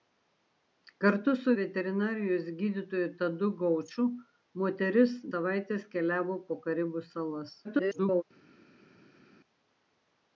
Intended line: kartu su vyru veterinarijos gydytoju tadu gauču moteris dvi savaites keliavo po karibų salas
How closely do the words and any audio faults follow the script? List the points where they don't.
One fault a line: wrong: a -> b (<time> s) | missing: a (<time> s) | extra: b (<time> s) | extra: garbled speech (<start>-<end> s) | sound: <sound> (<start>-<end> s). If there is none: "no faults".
missing: vyru (1.5 s)
missing: dvi (5.2 s)
extra: garbled speech (7.6-8.2 s)